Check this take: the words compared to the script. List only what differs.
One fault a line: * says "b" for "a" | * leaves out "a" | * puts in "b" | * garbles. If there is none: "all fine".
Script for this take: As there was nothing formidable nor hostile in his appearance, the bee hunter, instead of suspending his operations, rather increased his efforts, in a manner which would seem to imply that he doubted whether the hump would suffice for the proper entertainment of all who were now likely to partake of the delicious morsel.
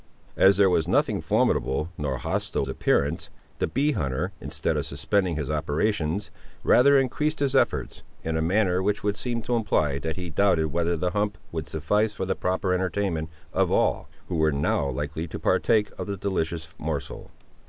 * leaves out "in his"